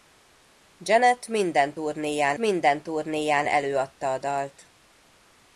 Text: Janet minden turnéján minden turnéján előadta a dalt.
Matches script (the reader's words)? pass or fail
pass